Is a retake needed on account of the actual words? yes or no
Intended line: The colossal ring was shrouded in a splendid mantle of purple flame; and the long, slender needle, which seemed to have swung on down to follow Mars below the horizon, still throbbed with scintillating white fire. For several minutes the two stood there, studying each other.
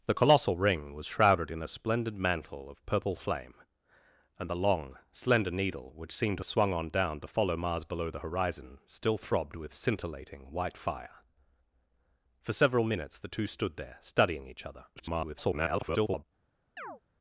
yes